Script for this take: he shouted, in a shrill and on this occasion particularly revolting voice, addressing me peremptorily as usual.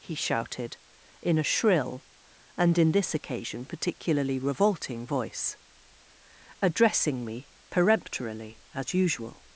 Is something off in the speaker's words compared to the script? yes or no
yes